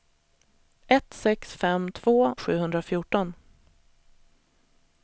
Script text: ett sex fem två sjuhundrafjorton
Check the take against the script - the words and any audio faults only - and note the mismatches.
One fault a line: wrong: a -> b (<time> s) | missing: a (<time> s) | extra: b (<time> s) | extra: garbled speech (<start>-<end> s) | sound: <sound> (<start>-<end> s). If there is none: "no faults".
no faults